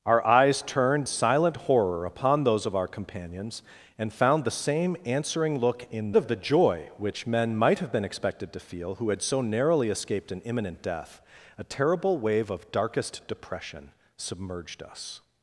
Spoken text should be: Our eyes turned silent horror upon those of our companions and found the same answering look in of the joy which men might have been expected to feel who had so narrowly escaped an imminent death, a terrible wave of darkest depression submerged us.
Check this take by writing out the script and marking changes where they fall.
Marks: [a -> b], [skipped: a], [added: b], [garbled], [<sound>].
Our eyes turned silent horror upon those of our companions and found the same answering look in of the joy which men might have been expected to feel who had so narrowly escaped an imminent death, a terrible wave of darkest depression submerged us.